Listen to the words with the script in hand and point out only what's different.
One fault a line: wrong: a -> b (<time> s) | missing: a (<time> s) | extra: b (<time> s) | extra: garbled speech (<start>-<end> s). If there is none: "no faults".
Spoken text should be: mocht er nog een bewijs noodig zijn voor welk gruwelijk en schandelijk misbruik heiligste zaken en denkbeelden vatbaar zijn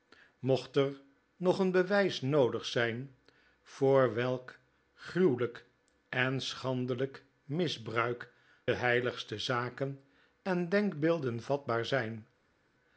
no faults